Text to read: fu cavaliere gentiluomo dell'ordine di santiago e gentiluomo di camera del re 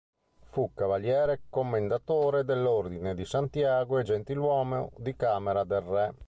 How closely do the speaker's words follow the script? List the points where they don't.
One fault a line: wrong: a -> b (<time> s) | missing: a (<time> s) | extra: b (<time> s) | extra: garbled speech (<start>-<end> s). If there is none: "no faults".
wrong: gentiluomo -> commendatore (1.5 s)